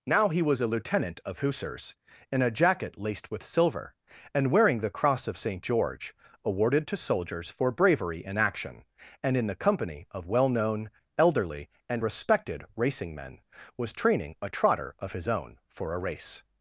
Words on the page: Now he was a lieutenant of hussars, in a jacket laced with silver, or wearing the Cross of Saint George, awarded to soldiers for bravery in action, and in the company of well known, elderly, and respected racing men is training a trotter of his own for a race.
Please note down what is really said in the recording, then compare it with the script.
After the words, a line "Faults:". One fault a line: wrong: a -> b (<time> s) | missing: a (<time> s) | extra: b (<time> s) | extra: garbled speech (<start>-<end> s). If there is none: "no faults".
Now he was a lieutenant of hussars, in a jacket laced with silver, and wearing the Cross of Saint George, awarded to soldiers for bravery in action, and in the company of well known, elderly, and respected racing men was training a trotter of his own for a race.
Faults:
wrong: or -> and (4.3 s)
wrong: is -> was (13.8 s)